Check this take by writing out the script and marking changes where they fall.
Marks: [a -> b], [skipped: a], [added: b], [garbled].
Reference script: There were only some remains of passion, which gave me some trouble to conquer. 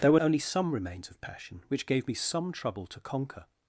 There were only some remains of passion, which gave me some trouble to conquer.